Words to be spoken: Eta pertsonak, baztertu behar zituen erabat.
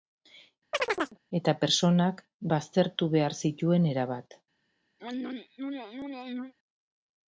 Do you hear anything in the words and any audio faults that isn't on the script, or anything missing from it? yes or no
yes